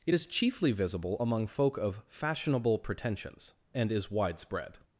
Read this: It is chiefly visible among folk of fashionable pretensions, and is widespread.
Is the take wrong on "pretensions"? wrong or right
right